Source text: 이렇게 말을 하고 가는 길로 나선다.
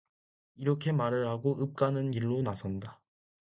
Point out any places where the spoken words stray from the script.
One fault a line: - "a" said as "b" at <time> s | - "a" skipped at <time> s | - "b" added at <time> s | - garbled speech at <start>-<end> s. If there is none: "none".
- "읍" added at 1.6 s